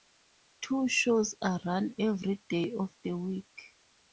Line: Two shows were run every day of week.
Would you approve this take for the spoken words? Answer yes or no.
no